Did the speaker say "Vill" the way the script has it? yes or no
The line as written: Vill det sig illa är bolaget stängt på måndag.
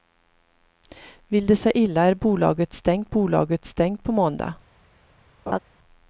yes